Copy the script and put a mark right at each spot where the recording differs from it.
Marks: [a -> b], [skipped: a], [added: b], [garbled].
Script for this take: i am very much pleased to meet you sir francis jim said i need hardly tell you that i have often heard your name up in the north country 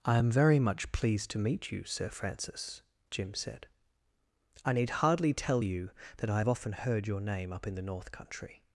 i am very much pleased to meet you sir francis jim said i need hardly tell you that i have often heard your name up in the north country